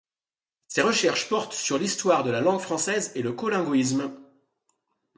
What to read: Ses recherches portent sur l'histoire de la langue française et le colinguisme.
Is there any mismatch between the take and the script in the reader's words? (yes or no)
no